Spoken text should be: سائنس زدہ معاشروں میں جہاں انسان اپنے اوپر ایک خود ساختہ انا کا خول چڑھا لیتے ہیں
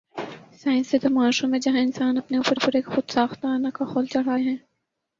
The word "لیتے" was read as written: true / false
false